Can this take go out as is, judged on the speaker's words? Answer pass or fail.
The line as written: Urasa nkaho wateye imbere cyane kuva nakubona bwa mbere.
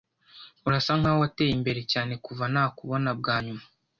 fail